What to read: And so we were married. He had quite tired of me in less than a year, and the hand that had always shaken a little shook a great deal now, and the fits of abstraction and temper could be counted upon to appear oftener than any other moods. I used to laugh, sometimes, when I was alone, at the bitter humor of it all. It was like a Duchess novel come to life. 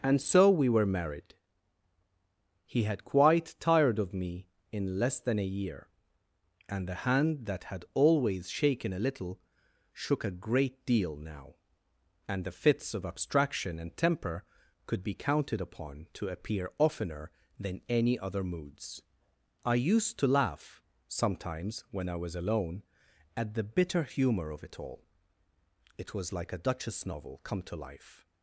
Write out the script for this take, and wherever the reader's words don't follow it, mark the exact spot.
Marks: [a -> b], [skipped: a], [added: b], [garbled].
And so we were married. He had quite tired of me in less than a year, and the hand that had always shaken a little shook a great deal now, and the fits of abstraction and temper could be counted upon to appear oftener than any other moods. I used to laugh, sometimes, when I was alone, at the bitter humor of it all. It was like a Duchess novel come to life.